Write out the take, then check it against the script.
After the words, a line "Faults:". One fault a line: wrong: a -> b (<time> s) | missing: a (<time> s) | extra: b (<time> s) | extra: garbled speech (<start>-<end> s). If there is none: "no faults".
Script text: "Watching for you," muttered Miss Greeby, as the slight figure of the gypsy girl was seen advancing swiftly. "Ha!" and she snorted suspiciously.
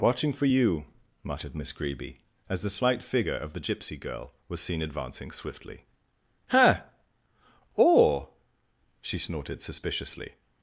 "Watching for you," muttered Miss Greeby, as the slight figure of the gypsy girl was seen advancing swiftly. "Ha!" or she snorted suspiciously.
Faults:
wrong: and -> or (7.7 s)